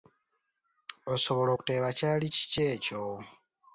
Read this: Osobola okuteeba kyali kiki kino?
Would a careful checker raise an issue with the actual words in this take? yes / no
yes